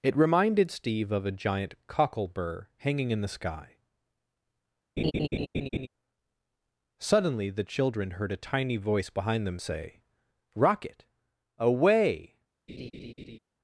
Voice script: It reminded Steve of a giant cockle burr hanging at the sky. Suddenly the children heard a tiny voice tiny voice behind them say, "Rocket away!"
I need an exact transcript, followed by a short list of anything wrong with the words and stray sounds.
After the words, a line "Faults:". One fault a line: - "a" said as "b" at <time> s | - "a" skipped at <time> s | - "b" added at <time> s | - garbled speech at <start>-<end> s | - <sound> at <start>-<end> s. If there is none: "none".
It reminded Steve of a giant cockle burr hanging in the sky. Suddenly the children heard a tiny voice behind them say, "Rocket away!"
Faults:
- "at" said as "in" at 3.1 s
- laugh at 5.0-5.9 s
- "tiny voice" skipped at 9.1 s
- laugh at 12.7-13.4 s